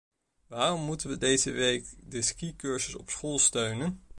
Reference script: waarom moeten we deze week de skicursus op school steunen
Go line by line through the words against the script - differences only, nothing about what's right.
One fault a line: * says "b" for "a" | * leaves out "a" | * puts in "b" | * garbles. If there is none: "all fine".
all fine